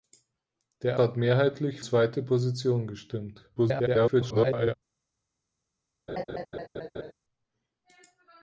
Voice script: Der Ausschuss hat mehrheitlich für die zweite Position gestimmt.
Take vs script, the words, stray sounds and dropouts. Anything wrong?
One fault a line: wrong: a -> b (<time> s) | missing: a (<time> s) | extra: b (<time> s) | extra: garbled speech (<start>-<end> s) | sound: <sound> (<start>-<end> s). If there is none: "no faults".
missing: Ausschuss (1.0 s)
missing: für die (1.8 s)
extra: garbled speech (3.6-4.7 s)
sound: laugh (6.1-7.1 s)